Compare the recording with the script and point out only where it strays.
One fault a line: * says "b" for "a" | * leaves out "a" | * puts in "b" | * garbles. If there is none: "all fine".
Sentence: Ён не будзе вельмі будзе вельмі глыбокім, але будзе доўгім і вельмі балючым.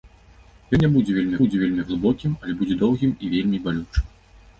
all fine